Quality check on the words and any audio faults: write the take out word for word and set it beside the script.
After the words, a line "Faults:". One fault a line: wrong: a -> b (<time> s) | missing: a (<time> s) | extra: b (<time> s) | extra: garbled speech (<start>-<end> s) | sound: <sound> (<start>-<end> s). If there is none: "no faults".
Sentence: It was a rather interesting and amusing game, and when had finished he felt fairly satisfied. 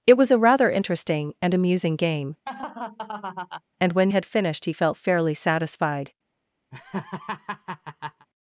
It was a rather interesting and amusing game, and when had finished he felt fairly satisfied.
Faults:
sound: laugh (2.5-3.6 s)
sound: laugh (6.7-8.3 s)